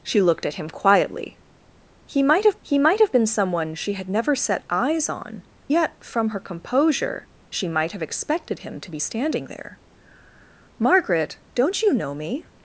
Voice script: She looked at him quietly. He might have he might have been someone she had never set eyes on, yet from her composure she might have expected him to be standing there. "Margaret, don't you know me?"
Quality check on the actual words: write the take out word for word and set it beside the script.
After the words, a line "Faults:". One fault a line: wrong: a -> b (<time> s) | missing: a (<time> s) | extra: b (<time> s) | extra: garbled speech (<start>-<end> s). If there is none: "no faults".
She looked at him quietly. He might have he might have been someone she had never set eyes on, yet from her composure she might have expected him to be standing there. "Margaret, don't you know me?"
Faults:
no faults